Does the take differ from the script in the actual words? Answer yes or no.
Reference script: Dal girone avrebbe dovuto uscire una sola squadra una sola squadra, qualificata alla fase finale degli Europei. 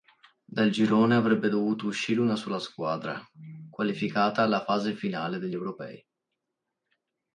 yes